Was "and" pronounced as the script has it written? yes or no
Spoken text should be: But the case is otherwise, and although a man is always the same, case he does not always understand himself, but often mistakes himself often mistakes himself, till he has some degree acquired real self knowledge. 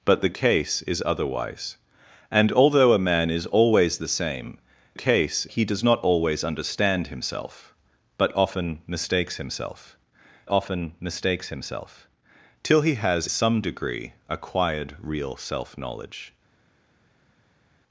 yes